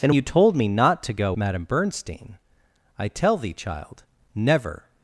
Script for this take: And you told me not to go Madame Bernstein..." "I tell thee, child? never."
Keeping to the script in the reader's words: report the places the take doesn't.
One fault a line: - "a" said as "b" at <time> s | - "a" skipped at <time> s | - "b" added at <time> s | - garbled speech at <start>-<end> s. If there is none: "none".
none